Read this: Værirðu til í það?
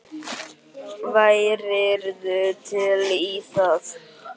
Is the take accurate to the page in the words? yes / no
yes